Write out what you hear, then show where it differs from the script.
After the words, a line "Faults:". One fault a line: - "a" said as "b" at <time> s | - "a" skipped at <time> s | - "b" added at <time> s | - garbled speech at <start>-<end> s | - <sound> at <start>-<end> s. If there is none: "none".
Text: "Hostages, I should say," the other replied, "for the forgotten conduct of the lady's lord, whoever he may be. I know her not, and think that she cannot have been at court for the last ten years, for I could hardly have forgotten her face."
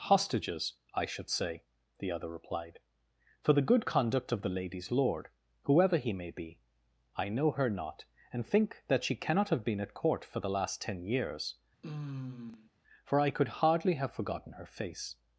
"Hostages, I should say," the other replied, "for the good conduct of the lady's lord, whoever he may be. I know her not, and think that she cannot have been at court for the last ten years, for I could hardly have forgotten her face."
Faults:
- "forgotten" said as "good" at 3.6 s
- sigh at 11.8-12.7 s